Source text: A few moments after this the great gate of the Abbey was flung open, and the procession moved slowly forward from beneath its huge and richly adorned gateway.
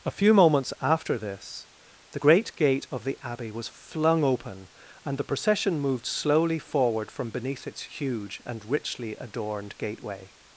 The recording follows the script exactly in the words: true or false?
true